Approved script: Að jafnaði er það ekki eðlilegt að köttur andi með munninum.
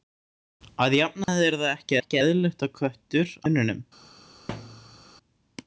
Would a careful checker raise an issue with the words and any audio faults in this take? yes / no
yes